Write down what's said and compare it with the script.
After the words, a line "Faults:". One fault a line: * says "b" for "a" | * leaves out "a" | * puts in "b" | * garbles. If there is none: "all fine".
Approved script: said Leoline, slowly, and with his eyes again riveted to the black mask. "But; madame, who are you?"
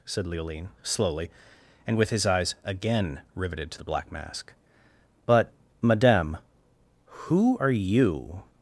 said Leoline, slowly, and with his eyes again riveted to the black mask. "But; madame, who are you?"
Faults:
all fine